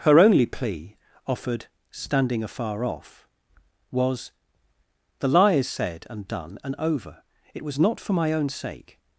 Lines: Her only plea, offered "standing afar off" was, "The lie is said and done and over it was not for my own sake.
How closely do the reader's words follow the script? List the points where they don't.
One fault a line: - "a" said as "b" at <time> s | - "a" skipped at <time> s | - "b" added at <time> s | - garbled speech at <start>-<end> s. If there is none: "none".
none